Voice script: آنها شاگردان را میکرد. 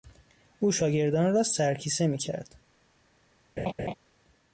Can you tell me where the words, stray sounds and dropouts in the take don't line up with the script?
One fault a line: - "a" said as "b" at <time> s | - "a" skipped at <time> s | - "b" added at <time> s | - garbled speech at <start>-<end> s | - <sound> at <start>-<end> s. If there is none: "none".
- "آنها" said as "او" at 0.6 s
- "سرکیسه" added at 1.4 s
- laugh at 3.6-3.9 s